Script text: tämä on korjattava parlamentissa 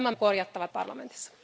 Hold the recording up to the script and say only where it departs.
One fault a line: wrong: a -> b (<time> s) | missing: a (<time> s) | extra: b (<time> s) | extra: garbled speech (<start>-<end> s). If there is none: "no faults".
no faults